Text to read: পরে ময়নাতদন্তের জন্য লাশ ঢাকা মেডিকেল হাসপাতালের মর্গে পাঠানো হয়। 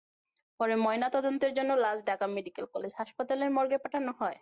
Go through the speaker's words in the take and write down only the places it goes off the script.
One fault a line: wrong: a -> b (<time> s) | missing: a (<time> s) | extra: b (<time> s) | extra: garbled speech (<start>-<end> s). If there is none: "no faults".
extra: কলেজ (2.7 s)